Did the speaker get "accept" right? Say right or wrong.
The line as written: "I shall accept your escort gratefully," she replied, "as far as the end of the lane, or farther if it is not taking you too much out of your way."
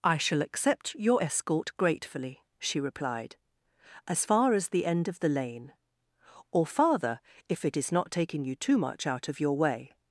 right